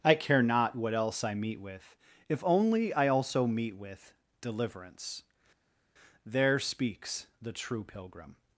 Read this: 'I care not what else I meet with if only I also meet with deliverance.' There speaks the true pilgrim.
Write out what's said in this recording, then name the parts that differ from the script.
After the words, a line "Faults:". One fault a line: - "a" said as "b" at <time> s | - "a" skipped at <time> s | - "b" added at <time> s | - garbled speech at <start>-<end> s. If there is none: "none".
'I care not what else I meet with if only I also meet with deliverance.' There speaks the true pilgrim.
Faults:
none